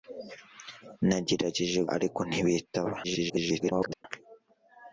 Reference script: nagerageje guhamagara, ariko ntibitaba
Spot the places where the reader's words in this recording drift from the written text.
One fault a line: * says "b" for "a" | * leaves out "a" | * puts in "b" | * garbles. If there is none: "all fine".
* leaves out "guhamagara"
* garbles